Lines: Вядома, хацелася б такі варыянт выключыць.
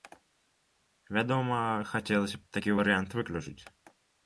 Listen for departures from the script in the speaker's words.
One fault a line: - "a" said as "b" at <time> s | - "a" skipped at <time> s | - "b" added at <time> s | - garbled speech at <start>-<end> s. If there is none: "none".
none